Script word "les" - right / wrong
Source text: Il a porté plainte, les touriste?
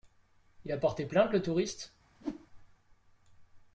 wrong